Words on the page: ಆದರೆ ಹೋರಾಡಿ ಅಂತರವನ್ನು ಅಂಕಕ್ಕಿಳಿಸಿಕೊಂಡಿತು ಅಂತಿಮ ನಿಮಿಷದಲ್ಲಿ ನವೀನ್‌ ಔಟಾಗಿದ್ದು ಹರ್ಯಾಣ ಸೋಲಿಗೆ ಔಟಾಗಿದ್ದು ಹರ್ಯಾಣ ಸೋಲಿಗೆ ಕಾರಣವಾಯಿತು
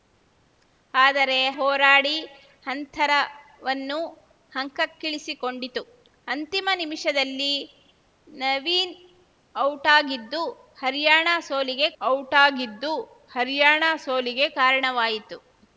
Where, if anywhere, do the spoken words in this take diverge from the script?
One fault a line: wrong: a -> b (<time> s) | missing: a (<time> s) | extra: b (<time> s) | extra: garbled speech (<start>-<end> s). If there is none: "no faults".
no faults